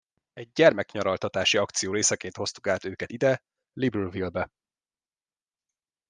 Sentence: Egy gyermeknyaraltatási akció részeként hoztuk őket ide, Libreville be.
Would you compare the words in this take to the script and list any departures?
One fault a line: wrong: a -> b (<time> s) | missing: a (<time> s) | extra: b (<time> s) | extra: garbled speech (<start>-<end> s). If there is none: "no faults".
extra: át (2.7 s)